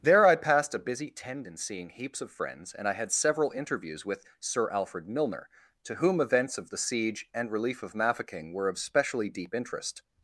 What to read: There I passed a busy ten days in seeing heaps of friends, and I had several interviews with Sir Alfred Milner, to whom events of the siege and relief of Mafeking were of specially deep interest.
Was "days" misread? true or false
true